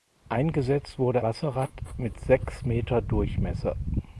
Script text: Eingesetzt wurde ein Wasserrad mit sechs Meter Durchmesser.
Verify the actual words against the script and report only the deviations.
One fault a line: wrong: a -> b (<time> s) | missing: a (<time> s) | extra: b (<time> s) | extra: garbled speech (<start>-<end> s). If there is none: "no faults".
missing: ein (1.2 s)